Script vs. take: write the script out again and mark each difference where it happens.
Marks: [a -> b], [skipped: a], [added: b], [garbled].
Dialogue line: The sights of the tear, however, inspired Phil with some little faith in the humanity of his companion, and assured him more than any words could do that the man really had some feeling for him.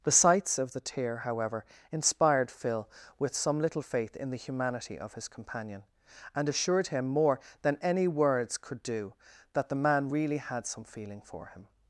The sights of the tear, however, inspired Phil with some little faith in the humanity of his companion, and assured him more than any words could do that the man really had some feeling for him.